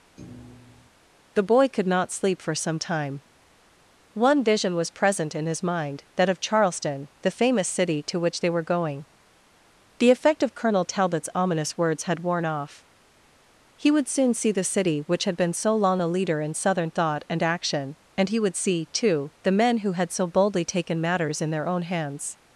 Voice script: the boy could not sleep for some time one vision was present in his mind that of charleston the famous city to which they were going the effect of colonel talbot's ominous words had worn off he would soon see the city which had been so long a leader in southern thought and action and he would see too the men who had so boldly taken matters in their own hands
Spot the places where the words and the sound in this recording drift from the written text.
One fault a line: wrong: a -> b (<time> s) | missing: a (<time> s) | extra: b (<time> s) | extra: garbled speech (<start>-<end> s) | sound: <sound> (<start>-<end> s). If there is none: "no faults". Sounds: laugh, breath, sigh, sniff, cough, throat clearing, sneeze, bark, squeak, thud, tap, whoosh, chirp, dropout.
sound: thud (0.2-0.9 s)